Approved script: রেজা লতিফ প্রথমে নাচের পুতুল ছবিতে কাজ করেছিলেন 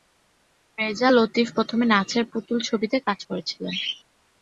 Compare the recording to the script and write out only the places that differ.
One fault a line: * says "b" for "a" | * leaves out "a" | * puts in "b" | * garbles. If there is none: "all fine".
all fine